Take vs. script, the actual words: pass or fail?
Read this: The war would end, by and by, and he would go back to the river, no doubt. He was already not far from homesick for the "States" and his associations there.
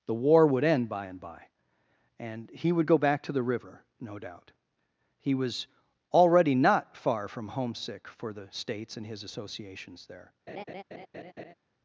pass